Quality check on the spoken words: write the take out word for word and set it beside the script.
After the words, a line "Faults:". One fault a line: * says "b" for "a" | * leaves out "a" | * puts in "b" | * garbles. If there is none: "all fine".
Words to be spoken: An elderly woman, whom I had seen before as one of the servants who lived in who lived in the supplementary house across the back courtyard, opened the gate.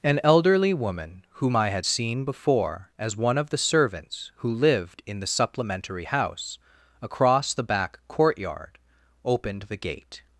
An elderly woman, whom I had seen before as one of the servants who lived in the supplementary house across the back courtyard, opened the gate.
Faults:
* leaves out "who lived in"